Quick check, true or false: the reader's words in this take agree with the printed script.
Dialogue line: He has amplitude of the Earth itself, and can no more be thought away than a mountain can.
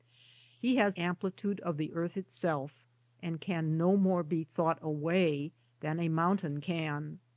true